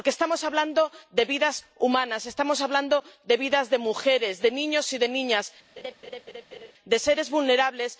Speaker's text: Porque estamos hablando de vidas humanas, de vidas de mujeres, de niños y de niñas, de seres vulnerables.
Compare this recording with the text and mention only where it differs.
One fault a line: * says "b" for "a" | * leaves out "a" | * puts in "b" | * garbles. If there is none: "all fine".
* puts in "estamos hablando"